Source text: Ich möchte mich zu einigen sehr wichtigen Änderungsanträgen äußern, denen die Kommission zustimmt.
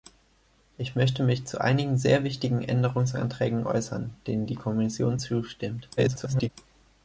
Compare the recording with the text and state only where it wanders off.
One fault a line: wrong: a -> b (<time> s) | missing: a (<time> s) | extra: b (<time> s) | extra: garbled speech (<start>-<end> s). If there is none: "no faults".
extra: garbled speech (6.0-6.5 s)